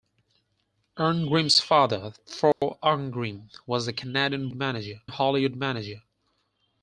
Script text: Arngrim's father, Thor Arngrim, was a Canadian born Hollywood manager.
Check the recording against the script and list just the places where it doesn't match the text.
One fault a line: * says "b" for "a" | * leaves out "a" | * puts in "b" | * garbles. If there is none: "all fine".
* says "manager" for "born"